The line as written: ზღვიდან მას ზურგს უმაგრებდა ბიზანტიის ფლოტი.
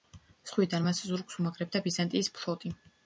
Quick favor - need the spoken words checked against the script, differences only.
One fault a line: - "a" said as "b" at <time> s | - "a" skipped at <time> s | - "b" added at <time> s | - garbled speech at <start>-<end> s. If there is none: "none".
none